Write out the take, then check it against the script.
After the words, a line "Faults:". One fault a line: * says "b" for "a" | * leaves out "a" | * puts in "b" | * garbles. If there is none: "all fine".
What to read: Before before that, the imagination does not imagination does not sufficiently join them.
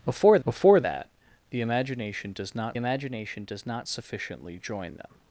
Before before that, the imagination does not imagination does not sufficiently join them.
Faults:
all fine